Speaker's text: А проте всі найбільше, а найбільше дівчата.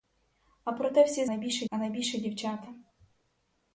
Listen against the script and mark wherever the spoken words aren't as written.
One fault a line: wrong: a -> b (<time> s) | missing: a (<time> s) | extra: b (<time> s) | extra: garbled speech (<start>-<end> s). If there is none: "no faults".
no faults